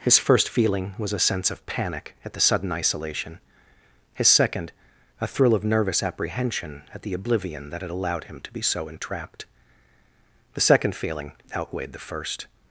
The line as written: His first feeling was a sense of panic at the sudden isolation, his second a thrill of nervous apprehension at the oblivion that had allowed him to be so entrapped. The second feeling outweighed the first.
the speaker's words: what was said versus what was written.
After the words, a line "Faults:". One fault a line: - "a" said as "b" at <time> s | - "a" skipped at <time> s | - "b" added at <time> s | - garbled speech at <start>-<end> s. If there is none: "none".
His first feeling was a sense of panic at the sudden isolation, his second a thrill of nervous apprehension at the oblivion that had allowed him to be so entrapped. The second feeling outweighed the first.
Faults:
none